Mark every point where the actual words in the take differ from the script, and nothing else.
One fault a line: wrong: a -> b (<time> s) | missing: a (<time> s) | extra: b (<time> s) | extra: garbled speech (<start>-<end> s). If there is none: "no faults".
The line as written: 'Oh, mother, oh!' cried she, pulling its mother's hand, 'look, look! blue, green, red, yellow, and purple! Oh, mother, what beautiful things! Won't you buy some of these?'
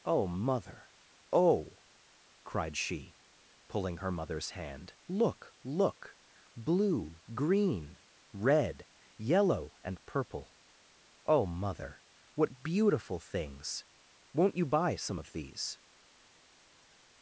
wrong: its -> her (4.0 s)